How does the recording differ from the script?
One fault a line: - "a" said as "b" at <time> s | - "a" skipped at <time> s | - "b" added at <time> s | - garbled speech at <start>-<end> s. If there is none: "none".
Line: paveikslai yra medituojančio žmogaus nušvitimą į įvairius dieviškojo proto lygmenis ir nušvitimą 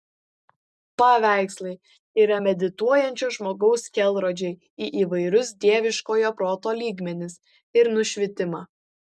- "nušvitimą" said as "kelrodžiai" at 4.0 s